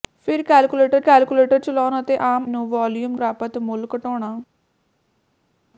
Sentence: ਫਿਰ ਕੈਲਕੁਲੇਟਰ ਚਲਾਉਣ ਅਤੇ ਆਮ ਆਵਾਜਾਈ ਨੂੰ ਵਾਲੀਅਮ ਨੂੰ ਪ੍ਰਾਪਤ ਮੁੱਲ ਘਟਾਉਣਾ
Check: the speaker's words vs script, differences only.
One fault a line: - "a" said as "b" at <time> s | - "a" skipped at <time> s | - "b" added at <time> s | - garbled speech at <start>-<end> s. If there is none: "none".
- "ਕੈਲਕੁਲੇਟਰ" added at 1.0 s
- "ਆਵਾਜਾਈ" skipped at 2.5 s
- "ਨੂੰ" skipped at 3.2 s